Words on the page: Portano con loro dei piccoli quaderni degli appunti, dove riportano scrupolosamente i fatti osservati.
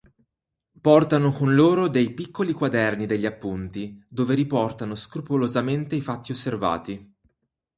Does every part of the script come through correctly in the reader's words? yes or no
yes